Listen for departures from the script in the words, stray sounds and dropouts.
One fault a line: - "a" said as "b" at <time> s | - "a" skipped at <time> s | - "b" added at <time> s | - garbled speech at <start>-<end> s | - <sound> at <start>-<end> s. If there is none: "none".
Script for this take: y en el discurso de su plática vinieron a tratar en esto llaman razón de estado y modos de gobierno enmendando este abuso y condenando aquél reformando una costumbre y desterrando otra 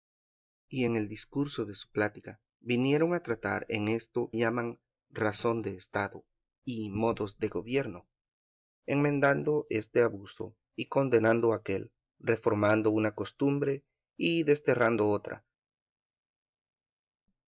none